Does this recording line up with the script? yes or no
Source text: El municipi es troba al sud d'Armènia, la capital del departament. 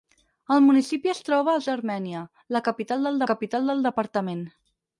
no